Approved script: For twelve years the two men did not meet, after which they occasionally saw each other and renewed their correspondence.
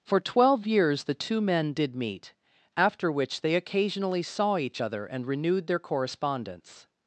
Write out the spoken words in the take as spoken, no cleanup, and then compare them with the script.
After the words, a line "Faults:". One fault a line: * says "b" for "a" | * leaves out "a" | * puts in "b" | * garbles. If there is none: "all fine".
For twelve years the two men did meet, after which they occasionally saw each other and renewed their correspondence.
Faults:
* leaves out "not"